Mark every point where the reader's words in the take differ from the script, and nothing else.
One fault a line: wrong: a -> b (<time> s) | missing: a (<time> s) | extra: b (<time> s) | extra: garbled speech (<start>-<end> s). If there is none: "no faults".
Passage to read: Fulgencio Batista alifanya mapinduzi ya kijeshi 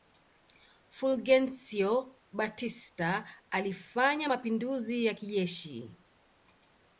no faults